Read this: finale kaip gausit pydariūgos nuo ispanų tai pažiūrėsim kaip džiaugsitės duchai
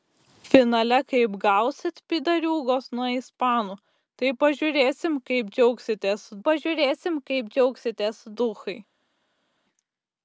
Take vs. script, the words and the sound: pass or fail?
fail